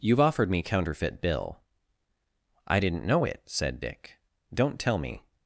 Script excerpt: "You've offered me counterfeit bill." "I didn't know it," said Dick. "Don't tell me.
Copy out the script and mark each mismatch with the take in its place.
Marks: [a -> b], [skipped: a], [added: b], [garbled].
"You've offered me counterfeit bill." "I didn't know it," said Dick. "Don't tell me.